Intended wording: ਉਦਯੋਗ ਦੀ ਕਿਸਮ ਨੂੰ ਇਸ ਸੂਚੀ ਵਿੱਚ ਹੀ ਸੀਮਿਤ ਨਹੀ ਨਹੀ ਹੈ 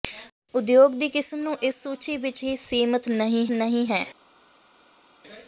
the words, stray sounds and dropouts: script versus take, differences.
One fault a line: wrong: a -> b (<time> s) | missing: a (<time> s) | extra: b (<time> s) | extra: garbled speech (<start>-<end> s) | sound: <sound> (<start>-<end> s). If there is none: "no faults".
no faults